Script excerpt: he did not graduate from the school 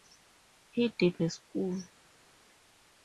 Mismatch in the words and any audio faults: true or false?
true